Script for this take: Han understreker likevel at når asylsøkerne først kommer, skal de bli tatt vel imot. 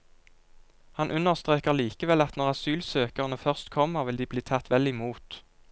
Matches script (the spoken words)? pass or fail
fail